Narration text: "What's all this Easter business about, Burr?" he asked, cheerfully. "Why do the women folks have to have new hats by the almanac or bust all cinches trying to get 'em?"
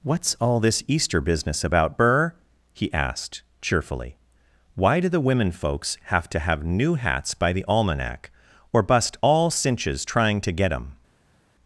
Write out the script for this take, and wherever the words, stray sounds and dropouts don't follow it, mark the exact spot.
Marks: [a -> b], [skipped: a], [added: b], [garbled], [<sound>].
"What's all this Easter business about, Burr?" he asked, cheerfully. "Why do the women folks have to have new hats by the almanac or bust all cinches trying to get 'em?"